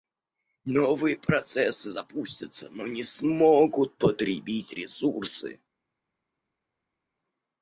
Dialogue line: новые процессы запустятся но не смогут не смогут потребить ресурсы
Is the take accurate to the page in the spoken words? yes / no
no